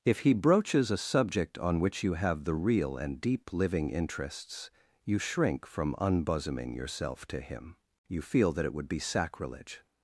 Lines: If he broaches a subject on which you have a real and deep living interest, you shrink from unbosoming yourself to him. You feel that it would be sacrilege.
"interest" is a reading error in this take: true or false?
true